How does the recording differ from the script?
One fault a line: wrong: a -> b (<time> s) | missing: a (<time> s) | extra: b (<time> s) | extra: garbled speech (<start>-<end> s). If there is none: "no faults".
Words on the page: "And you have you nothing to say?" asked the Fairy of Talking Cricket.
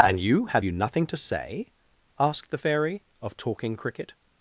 no faults